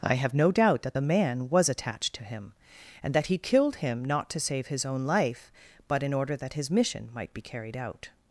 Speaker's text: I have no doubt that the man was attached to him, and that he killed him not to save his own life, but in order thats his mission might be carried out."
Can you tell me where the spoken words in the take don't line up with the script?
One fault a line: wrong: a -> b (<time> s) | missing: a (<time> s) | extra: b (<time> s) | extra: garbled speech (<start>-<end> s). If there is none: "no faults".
wrong: thats -> that (6.4 s)